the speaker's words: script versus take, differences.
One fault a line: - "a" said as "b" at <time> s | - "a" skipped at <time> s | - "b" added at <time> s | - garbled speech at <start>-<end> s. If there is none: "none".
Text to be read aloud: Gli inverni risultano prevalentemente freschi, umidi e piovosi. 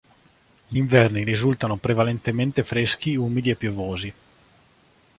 none